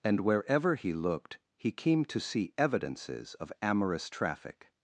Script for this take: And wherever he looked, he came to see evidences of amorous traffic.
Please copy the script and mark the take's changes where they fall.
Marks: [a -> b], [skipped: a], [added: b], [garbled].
And wherever he looked, he came to see evidences of amorous traffic.